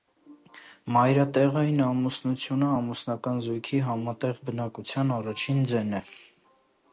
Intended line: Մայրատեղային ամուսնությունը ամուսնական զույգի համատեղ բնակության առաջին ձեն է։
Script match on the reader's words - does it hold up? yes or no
yes